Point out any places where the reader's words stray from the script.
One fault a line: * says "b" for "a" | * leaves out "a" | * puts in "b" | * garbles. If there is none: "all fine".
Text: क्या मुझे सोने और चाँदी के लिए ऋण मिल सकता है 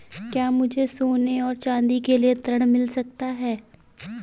all fine